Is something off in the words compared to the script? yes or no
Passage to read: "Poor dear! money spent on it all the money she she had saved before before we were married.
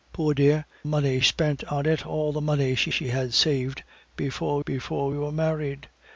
no